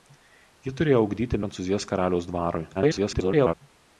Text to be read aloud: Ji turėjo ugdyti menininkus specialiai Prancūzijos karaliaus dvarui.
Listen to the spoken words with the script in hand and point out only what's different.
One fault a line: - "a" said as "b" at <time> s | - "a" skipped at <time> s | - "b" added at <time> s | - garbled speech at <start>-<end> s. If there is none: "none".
- "menininkus specialiai" skipped at 1.4 s
- garbled speech at 2.7-3.5 s